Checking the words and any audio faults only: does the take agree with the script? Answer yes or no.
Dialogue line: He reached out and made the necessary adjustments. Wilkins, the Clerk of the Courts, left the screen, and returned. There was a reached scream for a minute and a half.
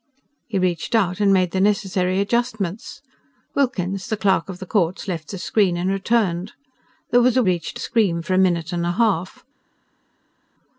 yes